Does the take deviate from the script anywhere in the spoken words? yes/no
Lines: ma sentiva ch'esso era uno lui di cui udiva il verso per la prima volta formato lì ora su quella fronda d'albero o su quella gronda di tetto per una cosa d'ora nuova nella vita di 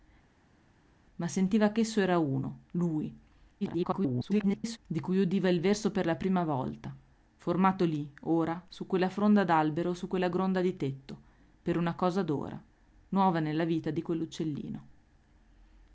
yes